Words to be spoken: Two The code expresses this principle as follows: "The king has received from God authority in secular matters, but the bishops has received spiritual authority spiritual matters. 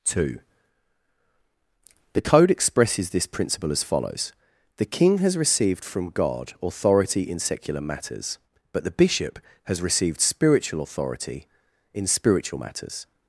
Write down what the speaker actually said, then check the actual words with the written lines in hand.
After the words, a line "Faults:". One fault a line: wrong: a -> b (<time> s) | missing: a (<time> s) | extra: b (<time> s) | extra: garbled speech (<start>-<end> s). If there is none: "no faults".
Two The code expresses this principle as follows: "The king has received from God authority in secular matters, but the bishop has received spiritual authority in spiritual matters.
Faults:
wrong: bishops -> bishop (9.0 s)
extra: in (11.9 s)